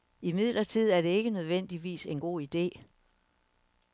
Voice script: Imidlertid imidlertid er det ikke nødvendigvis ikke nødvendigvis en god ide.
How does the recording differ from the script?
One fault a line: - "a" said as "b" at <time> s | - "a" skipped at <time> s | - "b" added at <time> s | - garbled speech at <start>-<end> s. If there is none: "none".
- "imidlertid" skipped at 0.9 s
- "ikke nødvendigvis" skipped at 2.0 s